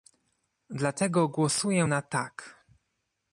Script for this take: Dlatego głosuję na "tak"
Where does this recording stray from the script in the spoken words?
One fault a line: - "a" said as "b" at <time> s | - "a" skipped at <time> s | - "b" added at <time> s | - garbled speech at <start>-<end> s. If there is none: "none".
none